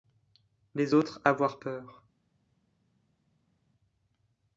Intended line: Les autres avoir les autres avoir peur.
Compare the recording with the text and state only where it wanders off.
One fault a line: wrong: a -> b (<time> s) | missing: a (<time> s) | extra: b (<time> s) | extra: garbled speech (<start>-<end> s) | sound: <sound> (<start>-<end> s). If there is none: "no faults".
missing: les autres avoir (1.6 s)